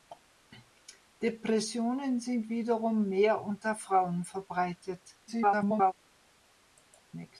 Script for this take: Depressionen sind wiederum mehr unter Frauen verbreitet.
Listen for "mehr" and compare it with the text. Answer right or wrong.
right